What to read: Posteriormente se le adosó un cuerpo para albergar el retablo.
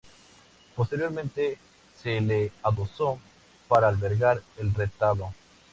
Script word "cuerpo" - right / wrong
wrong